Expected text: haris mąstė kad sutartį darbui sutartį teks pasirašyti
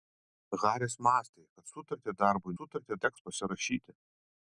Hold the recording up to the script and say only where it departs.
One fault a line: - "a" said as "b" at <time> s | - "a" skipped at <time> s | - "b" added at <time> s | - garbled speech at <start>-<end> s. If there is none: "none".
none